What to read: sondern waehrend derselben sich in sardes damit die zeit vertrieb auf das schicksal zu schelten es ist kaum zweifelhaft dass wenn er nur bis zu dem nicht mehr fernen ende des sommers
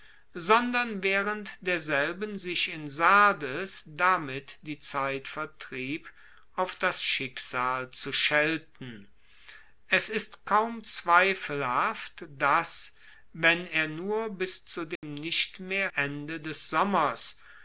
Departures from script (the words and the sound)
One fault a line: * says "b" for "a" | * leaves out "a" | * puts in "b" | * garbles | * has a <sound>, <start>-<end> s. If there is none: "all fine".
* has a dropout, 15.0-15.0 s
* leaves out "fernen"